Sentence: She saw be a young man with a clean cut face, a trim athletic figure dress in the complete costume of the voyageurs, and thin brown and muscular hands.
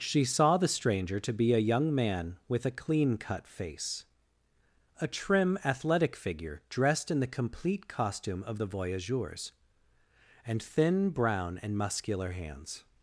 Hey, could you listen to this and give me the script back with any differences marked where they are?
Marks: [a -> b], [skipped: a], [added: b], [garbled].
She saw [added: the stranger to] be a young man with a clean cut face, a trim athletic figure [dress -> dressed] in the complete costume of the voyageurs, and thin brown and muscular hands.